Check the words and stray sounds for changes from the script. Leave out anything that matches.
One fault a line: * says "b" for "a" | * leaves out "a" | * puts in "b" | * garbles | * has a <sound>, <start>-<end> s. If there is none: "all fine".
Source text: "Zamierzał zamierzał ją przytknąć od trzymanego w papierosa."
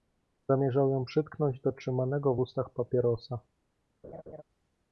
* leaves out "zamierzał"
* says "do" for "od"
* puts in "ustach"
* has a laugh, 4.0-4.4 s